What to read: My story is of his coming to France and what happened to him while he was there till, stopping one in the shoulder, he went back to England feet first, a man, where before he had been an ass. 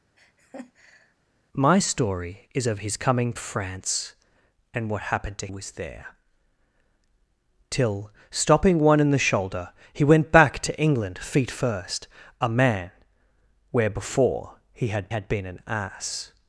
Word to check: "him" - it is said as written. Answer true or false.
false